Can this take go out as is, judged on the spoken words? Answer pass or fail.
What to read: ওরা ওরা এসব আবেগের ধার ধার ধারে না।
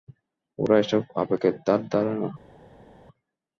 fail